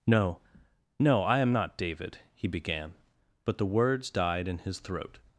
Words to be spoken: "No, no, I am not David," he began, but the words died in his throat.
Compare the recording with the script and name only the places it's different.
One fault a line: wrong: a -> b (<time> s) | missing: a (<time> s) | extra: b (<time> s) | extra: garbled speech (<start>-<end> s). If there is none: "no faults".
no faults